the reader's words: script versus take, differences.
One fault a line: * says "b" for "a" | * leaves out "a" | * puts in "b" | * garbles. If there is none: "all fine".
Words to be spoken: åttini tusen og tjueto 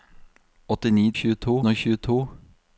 * says "tjueto" for "tusen"